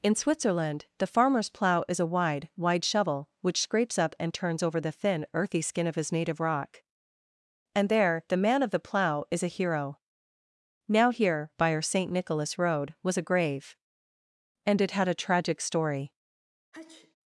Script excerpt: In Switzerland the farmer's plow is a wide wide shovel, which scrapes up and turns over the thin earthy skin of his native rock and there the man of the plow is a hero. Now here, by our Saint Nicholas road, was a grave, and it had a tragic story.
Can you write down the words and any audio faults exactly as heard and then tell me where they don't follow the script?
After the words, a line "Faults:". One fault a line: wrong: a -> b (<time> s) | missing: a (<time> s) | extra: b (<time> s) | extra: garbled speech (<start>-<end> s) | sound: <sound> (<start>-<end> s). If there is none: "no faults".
In Switzerland the farmer's plow is a wide wide shovel, which scrapes up and turns over the thin earthy skin of his native rock and there the man of the plow is a hero. Now here, by our Saint Nicholas road, was a grave, and it had a tragic story.
Faults:
sound: sneeze (16.7-17.2 s)